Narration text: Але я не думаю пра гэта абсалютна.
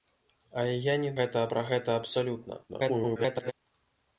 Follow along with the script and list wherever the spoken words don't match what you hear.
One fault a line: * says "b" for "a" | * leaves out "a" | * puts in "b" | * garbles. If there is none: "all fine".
* says "гэта" for "думаю"
* garbles